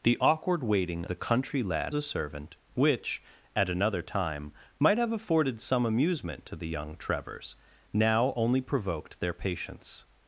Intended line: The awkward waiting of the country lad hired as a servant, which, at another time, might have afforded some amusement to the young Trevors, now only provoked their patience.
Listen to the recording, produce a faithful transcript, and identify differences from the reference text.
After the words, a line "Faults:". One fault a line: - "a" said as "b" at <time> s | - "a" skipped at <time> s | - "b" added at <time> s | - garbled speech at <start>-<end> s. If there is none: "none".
The awkward waiting the country lad a servant, which, at another time, might have afforded some amusement to the young Trevors, now only provoked their patience.
Faults:
- "of" skipped at 1.1 s
- "hired as" skipped at 1.9 s